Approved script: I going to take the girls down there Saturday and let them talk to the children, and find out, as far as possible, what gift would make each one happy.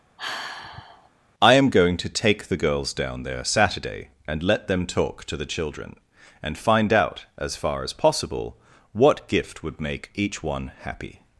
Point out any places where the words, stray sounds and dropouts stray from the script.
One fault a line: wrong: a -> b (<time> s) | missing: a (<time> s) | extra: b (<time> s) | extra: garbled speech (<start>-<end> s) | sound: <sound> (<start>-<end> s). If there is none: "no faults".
sound: sigh (0.2-1.1 s)
extra: am (1.5 s)